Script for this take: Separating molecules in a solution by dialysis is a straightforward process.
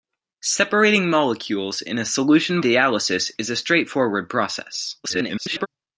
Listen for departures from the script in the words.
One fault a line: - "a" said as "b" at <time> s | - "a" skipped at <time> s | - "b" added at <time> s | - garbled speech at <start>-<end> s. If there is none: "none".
- "by" skipped at 2.6 s
- garbled speech at 5.0-5.7 s